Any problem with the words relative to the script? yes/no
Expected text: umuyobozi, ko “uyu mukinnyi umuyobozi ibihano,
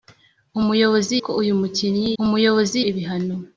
no